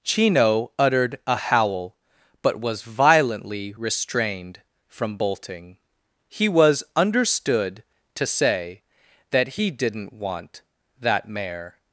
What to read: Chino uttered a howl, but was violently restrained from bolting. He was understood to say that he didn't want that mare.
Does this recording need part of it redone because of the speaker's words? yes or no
no